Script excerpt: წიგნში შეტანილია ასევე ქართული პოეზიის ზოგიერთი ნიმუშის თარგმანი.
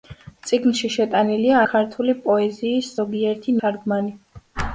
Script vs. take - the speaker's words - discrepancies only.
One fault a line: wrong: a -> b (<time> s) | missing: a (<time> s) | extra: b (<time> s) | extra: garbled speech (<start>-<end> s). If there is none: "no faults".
missing: ასევე (1.6 s)
missing: ნიმუშის (3.6 s)